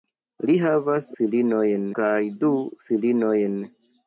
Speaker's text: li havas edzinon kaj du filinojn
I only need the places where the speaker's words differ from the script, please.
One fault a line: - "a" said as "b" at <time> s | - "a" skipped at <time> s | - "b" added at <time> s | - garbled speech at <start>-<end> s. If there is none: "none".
- "edzinon" said as "filinojn" at 1.2 s